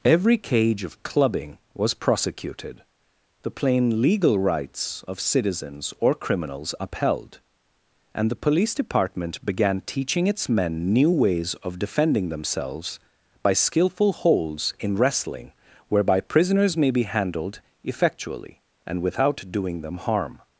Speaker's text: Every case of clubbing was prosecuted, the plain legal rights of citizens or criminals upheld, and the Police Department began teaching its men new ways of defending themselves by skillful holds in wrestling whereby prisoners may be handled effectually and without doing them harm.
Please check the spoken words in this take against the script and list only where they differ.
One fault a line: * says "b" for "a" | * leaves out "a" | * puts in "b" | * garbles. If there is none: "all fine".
* says "cage" for "case"